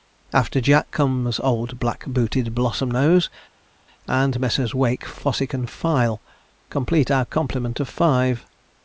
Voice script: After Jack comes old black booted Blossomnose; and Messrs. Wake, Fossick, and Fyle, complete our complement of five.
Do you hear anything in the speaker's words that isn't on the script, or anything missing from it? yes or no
no